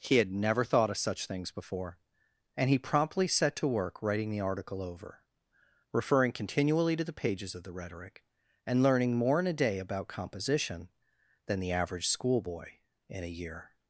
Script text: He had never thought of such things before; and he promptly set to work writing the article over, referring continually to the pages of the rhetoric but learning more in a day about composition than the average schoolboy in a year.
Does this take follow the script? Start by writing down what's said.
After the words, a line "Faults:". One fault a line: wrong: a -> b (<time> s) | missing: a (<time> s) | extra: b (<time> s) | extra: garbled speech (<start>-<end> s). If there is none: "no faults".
He had never thought of such things before; and he promptly set to work writing the article over, referring continually to the pages of the rhetoric and learning more in a day about composition than the average schoolboy in a year.
Faults:
wrong: but -> and (8.7 s)